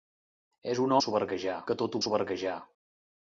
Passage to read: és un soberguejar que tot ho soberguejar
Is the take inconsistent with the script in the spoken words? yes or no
no